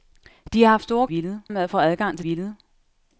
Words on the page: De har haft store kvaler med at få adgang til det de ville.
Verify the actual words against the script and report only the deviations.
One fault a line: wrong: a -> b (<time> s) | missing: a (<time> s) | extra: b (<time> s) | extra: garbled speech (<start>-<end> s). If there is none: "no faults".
wrong: kvaler -> ville (1.1 s)
missing: det de (2.3 s)